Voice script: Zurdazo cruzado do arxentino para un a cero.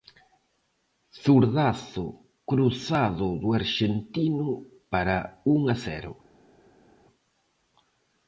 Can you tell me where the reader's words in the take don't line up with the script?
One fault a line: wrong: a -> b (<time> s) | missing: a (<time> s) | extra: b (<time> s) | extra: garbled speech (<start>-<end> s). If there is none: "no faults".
no faults